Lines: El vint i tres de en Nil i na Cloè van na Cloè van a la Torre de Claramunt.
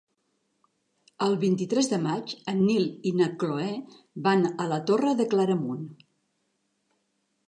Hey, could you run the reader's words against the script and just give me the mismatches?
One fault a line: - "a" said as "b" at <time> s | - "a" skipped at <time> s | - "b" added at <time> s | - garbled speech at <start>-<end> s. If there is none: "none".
- "maig" added at 2.0 s
- "na Cloè van" skipped at 4.4 s